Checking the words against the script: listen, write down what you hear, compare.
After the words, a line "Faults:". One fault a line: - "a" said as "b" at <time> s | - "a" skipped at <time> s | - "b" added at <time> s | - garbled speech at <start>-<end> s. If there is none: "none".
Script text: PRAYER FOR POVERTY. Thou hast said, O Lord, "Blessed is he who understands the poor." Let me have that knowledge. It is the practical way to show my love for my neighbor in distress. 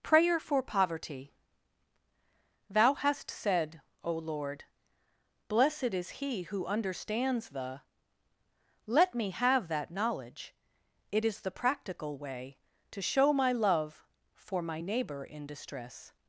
PRAYER FOR POVERTY. Thou hast said, O Lord, "Blessed is he who understands the." Let me have that knowledge. It is the practical way to show my love for my neighbor in distress.
Faults:
- "poor" skipped at 7.8 s